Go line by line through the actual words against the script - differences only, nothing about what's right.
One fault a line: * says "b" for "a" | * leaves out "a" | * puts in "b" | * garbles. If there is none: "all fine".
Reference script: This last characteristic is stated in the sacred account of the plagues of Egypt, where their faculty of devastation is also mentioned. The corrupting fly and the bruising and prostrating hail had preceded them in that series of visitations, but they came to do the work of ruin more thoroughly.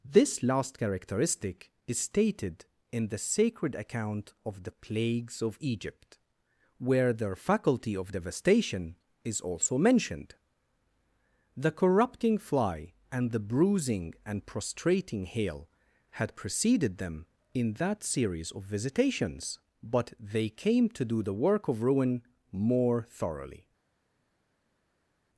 all fine